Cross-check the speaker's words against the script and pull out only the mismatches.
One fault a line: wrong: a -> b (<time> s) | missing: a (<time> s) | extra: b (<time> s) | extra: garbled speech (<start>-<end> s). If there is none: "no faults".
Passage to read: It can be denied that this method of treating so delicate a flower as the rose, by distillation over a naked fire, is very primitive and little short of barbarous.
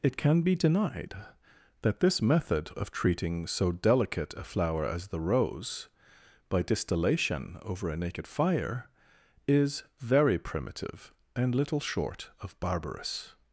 no faults